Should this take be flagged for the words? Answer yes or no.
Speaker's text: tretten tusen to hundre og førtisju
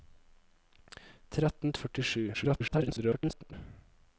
yes